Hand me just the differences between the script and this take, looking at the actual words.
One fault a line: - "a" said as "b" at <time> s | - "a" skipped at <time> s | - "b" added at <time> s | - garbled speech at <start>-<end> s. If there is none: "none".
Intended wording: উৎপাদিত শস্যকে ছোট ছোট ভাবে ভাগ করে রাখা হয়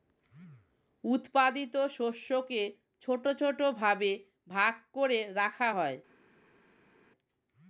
none